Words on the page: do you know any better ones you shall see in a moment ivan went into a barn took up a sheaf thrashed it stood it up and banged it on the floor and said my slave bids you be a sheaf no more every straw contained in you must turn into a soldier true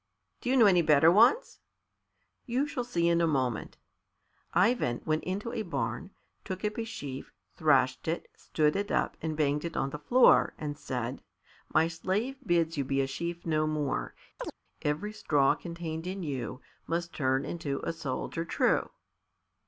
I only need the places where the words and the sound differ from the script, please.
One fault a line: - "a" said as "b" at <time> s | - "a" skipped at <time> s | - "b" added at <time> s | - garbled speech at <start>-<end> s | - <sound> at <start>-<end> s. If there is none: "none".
- chirp at 14.4-14.5 s